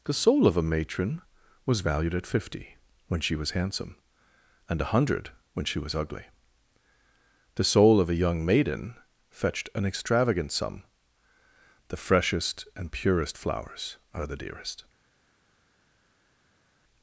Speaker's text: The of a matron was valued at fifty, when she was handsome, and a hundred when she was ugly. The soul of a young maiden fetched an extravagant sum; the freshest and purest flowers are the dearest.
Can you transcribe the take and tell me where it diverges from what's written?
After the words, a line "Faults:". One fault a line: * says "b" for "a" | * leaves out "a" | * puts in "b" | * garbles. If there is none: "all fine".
The soul of a matron was valued at fifty, when she was handsome, and a hundred when she was ugly. The soul of a young maiden fetched an extravagant sum; the freshest and purest flowers are the dearest.
Faults:
* puts in "soul"